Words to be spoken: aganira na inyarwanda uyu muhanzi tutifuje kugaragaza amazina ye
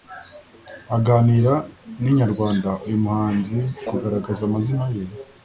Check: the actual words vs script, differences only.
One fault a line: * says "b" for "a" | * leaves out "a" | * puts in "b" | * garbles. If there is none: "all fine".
* leaves out "tutifuje"